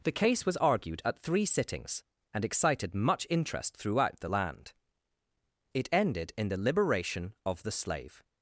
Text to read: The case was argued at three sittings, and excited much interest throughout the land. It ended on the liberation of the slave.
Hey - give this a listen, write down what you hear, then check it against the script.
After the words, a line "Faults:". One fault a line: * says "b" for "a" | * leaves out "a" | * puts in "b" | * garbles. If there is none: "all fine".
The case was argued at three sittings, and excited much interest throughout the land. It ended in the liberation of the slave.
Faults:
* says "in" for "on"